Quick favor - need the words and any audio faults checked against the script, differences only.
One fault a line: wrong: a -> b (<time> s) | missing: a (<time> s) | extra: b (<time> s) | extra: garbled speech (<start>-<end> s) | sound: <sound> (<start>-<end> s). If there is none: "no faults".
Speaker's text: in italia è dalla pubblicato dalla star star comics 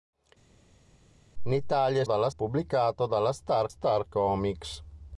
no faults